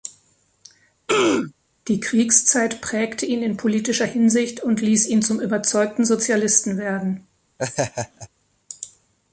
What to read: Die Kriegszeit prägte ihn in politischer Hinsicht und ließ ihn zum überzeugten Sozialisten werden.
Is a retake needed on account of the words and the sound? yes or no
yes